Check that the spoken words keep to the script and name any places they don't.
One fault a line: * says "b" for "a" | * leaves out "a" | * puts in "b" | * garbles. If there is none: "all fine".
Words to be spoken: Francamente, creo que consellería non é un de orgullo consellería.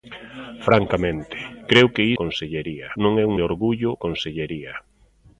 all fine